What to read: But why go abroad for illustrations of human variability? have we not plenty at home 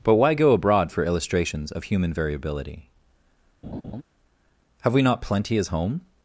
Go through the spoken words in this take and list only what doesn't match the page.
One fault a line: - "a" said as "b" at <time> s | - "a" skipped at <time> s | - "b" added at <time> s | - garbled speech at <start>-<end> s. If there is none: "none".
- "at" said as "as" at 5.6 s